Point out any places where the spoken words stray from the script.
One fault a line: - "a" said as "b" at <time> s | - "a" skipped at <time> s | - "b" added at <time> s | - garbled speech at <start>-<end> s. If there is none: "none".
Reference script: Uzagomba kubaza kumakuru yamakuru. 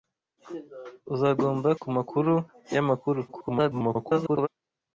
- "kubaza" skipped at 1.7 s
- garbled speech at 3.3-4.5 s